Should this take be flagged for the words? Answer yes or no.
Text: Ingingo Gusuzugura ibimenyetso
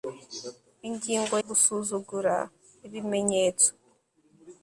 no